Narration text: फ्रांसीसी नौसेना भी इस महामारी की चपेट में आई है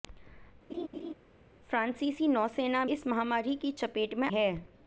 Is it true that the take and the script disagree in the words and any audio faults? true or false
true